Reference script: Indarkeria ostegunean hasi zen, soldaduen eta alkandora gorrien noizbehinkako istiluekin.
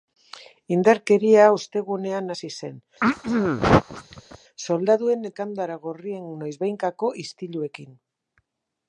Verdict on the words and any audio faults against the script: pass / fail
fail